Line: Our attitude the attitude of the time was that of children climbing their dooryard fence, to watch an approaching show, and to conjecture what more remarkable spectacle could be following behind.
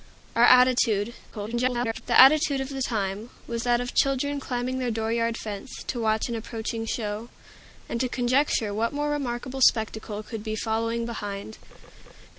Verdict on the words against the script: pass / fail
fail